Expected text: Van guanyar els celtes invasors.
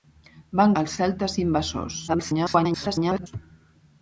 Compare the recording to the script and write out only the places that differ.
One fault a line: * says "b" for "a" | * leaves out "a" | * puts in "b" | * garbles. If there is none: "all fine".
* leaves out "guanyar"
* garbles